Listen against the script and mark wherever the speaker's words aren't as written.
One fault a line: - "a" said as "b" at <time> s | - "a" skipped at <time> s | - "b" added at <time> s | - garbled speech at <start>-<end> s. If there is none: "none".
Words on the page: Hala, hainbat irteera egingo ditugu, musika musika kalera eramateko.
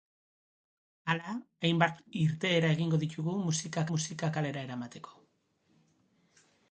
none